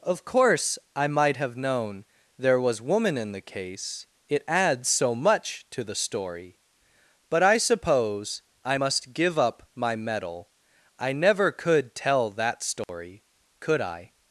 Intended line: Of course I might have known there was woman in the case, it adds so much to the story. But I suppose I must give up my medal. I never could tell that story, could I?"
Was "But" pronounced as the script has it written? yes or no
yes